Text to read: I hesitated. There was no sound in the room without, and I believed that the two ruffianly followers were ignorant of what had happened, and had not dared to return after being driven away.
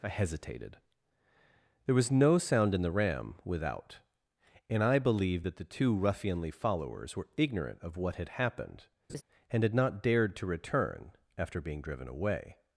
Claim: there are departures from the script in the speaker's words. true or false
true